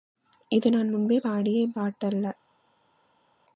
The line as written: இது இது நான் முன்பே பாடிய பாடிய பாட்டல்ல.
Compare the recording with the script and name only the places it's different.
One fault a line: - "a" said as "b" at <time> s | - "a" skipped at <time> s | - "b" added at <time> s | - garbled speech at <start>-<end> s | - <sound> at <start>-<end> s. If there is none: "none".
- "இது" skipped at 0.7 s
- "பாடிய" skipped at 1.7 s